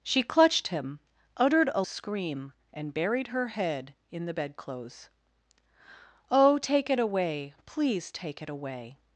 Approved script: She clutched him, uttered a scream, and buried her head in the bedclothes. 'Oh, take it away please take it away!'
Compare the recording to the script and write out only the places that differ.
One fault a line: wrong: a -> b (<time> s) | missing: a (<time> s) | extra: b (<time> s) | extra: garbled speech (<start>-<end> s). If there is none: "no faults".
no faults